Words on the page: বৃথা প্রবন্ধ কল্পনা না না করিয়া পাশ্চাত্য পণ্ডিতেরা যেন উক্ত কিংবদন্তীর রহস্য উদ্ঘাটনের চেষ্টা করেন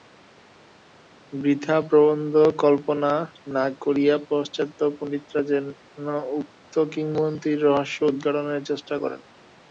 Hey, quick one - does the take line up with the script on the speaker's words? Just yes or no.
no